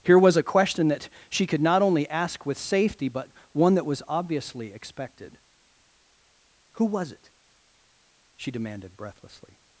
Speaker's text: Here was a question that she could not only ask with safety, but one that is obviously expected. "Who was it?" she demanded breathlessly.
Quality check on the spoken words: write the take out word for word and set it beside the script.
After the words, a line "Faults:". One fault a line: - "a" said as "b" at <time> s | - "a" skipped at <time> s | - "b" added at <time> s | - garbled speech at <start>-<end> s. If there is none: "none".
Here was a question that she could not only ask with safety, but one that was obviously expected. "Who was it?" she demanded breathlessly.
Faults:
- "is" said as "was" at 3.9 s